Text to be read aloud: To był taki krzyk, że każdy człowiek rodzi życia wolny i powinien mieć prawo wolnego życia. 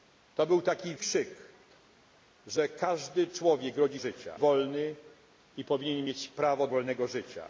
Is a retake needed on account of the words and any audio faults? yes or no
no